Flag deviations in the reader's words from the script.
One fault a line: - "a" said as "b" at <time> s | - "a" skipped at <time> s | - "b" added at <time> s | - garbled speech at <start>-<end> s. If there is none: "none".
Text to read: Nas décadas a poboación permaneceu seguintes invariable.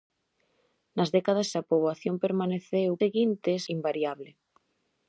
none